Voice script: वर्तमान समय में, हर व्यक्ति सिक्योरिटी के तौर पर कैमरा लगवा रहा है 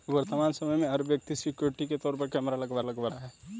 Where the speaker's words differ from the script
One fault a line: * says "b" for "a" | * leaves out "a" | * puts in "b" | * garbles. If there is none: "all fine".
* puts in "लगवा"